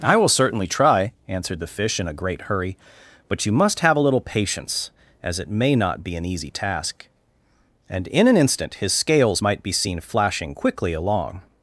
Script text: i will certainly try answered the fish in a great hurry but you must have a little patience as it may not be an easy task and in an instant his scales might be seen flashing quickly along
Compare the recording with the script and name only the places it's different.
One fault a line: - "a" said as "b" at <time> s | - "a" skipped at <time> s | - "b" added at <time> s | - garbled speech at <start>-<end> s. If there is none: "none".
none